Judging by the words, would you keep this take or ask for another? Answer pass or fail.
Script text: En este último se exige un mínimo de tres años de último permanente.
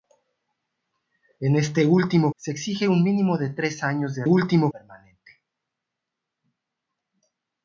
pass